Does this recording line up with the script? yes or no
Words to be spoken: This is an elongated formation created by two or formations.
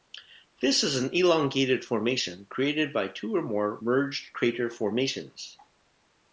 no